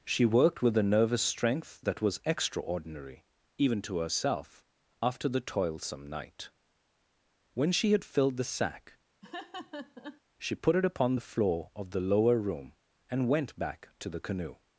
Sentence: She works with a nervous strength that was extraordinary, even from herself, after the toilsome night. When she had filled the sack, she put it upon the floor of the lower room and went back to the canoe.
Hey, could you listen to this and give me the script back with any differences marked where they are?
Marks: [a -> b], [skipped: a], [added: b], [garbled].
She [works -> worked] with a nervous strength that was extraordinary, even [from -> to] herself, after the toilsome night. When she had filled the sack, she put it upon the floor of the lower room and went back to the canoe.